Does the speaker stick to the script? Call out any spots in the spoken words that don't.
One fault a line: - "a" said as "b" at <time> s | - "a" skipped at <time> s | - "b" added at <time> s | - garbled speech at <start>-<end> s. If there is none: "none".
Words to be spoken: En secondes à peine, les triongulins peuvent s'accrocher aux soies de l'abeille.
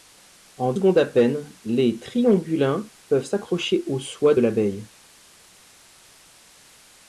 none